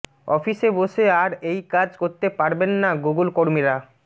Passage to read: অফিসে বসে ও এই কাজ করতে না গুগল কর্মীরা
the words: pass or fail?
fail